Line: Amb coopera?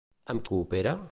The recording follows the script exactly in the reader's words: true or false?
true